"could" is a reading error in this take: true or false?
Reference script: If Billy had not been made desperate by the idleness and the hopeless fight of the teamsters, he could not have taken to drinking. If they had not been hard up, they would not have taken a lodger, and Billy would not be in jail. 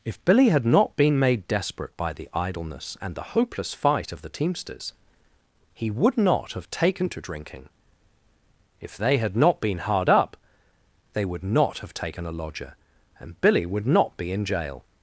true